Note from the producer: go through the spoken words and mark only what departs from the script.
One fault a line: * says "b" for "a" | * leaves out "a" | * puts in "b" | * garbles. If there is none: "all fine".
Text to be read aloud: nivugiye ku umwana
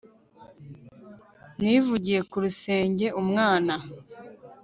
* puts in "rusenge"